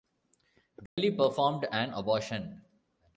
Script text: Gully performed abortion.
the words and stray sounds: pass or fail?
fail